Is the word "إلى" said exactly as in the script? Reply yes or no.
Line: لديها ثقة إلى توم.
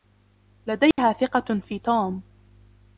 no